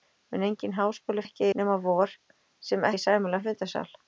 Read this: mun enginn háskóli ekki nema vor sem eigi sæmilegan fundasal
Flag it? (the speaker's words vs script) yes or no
no